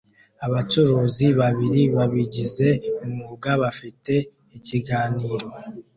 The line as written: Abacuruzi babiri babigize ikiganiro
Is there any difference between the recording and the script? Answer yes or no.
yes